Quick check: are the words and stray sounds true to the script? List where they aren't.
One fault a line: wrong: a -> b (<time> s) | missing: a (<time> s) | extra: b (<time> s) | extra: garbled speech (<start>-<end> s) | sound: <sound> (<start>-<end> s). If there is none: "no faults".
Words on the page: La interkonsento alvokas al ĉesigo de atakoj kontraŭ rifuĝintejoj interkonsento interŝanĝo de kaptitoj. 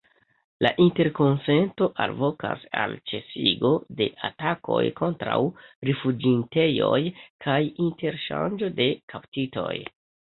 wrong: interkonsento -> kaj (7.5 s)